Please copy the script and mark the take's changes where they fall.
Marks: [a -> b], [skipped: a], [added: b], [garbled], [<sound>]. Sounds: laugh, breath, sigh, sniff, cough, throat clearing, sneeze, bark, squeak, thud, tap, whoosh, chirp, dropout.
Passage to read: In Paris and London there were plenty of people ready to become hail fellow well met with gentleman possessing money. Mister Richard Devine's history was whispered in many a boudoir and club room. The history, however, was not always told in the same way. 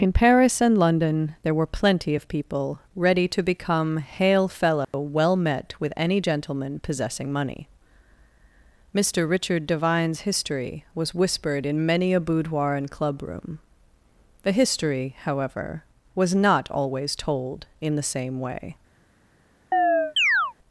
In Paris and London there were plenty of people ready to become hail fellow [dropout] well met with [added: any] gentleman possessing money. Mister Richard Devine's history was whispered in many a boudoir and club room. The history, however, was not always told in the same way. [chirp]